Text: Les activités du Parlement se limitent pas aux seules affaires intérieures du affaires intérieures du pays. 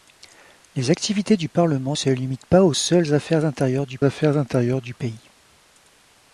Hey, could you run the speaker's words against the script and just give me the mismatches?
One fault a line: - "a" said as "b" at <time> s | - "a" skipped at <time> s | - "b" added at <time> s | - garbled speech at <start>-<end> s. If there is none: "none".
none